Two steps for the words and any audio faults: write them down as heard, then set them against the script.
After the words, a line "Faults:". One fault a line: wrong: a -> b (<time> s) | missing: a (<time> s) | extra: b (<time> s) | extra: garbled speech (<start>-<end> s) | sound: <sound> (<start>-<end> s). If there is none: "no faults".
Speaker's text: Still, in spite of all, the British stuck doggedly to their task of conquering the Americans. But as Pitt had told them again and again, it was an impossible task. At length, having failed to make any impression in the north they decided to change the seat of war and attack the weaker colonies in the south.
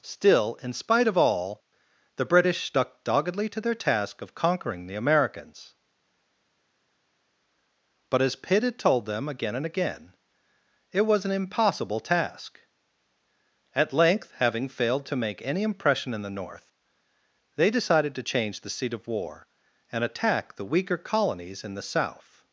Still, in spite of all, the British stuck doggedly to their task of conquering the Americans. But as Pitt had told them again and again, it was an impossible task. At length, having failed to make any impression in the north they decided to change the seat of war and attack the weaker colonies in the south.
Faults:
no faults